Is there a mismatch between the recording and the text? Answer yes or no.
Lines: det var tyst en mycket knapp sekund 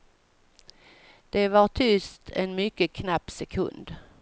no